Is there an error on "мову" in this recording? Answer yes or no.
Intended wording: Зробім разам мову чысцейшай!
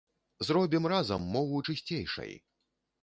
no